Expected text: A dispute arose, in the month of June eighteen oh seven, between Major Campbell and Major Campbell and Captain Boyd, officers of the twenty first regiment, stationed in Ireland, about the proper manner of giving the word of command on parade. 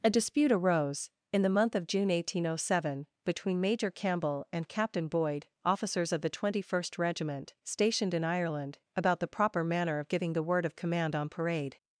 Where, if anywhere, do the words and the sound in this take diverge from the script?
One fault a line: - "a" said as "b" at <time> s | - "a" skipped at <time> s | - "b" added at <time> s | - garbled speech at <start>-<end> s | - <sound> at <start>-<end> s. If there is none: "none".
- "Major Campbell and" skipped at 4.7 s